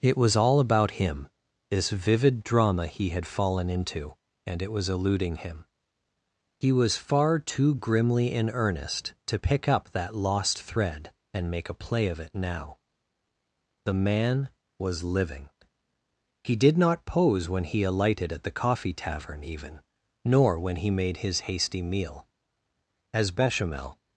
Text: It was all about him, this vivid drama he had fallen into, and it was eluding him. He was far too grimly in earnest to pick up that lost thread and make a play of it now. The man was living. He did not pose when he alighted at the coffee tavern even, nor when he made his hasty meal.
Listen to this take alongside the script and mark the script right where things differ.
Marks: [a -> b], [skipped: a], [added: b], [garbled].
It was all about him, this vivid drama he had fallen into, and it was eluding him. He was far too grimly in earnest to pick up that lost thread and make a play of it now. The man was living. He did not pose when he alighted at the coffee tavern even, nor when he made his hasty meal. [added: As Bechamel]